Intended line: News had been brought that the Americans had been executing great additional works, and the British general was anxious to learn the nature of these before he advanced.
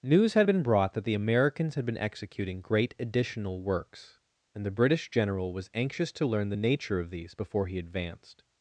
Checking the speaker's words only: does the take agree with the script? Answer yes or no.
yes